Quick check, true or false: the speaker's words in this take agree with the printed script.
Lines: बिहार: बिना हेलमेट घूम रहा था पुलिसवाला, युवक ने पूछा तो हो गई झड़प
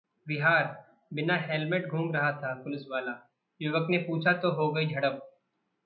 true